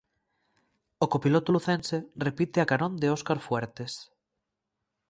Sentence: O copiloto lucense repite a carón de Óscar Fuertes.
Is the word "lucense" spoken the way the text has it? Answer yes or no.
yes